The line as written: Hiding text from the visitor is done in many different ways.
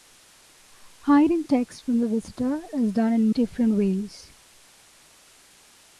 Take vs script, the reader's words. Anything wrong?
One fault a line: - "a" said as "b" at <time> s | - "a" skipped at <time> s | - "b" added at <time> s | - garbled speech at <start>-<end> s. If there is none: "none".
- "many" skipped at 3.3 s